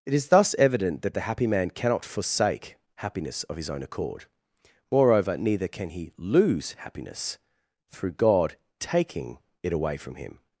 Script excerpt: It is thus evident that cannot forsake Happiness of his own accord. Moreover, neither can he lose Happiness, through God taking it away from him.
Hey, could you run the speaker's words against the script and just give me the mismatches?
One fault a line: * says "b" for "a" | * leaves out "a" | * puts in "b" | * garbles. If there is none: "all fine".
* puts in "the happy man"